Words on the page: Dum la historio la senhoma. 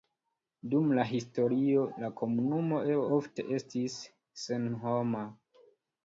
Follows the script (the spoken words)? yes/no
no